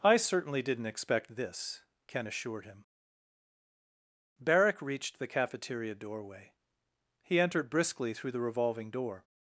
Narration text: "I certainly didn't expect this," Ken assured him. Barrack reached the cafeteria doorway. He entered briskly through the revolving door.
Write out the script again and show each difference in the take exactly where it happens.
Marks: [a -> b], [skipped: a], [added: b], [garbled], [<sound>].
"I certainly didn't expect this," Ken assured him. Barrack reached the cafeteria doorway. He entered briskly through the revolving door.